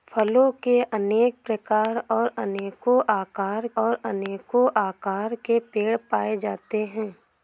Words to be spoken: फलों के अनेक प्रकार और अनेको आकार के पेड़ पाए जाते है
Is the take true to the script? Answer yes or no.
no